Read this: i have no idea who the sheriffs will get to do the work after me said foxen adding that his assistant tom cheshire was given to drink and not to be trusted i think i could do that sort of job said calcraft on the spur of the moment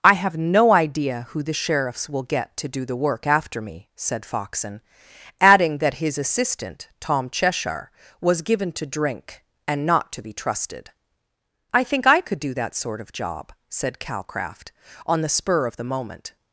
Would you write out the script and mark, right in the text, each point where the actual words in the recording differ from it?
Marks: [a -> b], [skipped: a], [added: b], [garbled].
i have no idea who the sheriffs will get to do the work after me said foxen adding that his assistant tom cheshire was given to drink and not to be trusted i think i could do that sort of job said calcraft on the spur of the moment